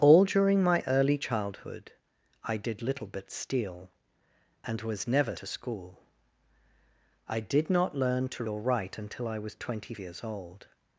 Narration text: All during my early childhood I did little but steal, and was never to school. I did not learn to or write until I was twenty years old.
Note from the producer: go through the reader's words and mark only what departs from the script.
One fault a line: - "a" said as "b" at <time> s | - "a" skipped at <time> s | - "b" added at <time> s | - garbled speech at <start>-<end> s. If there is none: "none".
none